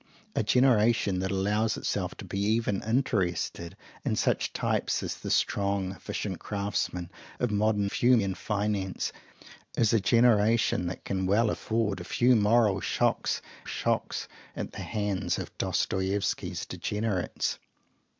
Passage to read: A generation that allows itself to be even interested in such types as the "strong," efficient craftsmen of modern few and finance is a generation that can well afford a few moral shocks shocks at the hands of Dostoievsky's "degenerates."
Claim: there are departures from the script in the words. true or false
false